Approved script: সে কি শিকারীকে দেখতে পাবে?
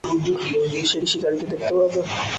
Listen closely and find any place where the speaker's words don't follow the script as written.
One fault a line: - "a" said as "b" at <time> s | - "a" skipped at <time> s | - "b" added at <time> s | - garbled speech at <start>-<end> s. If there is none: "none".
none